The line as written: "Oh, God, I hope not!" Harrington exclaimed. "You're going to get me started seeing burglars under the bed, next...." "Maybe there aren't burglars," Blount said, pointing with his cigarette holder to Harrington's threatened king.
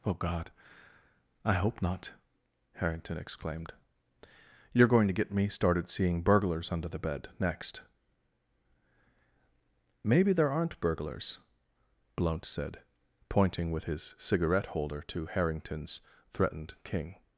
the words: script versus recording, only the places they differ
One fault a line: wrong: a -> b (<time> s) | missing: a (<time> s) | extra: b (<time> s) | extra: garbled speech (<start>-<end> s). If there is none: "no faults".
no faults